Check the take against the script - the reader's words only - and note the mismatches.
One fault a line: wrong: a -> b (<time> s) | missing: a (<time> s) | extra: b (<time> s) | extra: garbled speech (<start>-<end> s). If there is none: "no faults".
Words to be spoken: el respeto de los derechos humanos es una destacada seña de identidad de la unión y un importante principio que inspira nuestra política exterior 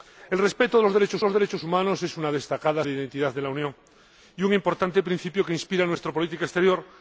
extra: los derechos (1.2 s)
missing: seña (2.8 s)